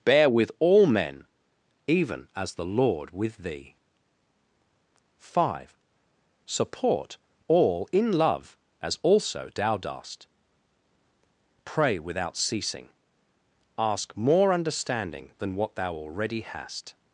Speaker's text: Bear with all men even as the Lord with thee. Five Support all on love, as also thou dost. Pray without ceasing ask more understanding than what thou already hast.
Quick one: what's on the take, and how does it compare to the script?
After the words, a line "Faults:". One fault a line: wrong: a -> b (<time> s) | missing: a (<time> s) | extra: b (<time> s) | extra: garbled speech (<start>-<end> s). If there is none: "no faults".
Bear with all men even as the Lord with thee. Five Support all in love, as also thou dost. Pray without ceasing ask more understanding than what thou already hast.
Faults:
wrong: on -> in (7.9 s)